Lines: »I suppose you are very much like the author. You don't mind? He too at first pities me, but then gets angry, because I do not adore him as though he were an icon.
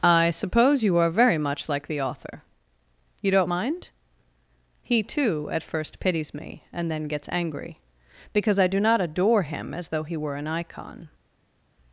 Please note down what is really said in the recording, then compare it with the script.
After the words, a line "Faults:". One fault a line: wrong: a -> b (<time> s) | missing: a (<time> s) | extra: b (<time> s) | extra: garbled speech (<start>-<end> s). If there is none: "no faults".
»I suppose you are very much like the author. You don't mind? He too at first pities me, and then gets angry, because I do not adore him as though he were an icon.
Faults:
wrong: but -> and (6.7 s)